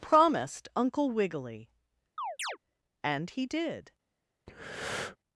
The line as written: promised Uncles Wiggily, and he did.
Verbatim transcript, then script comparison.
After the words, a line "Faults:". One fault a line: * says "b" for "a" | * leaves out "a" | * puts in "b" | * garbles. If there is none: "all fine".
promised Uncle Wiggily, and he did.
Faults:
* says "Uncle" for "Uncles"